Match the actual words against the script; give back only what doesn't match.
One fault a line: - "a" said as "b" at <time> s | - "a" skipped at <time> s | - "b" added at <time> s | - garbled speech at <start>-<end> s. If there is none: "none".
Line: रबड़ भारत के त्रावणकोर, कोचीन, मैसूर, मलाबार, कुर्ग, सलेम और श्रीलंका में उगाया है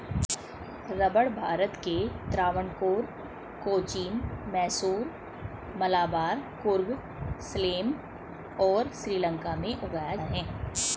none